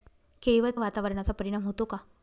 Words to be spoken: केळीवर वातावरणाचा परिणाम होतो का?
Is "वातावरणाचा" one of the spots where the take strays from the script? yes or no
no